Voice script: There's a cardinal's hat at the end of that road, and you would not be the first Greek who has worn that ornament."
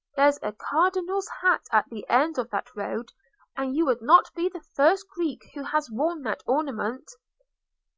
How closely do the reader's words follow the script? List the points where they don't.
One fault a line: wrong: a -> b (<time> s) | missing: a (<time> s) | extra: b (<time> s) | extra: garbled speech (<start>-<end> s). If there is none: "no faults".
no faults